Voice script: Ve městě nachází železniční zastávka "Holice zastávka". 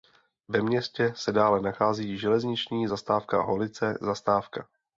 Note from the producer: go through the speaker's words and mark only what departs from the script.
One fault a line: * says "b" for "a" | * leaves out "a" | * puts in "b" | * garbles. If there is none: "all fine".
* puts in "se dále"